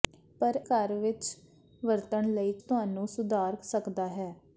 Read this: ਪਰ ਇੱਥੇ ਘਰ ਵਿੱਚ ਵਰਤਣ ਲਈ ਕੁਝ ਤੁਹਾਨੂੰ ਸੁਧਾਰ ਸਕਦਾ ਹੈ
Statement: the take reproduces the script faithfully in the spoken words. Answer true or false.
false